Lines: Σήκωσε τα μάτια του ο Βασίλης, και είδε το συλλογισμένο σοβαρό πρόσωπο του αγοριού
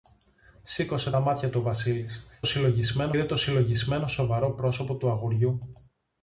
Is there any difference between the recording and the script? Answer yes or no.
yes